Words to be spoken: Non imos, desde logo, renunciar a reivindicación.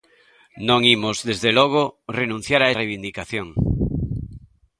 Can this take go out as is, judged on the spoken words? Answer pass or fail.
pass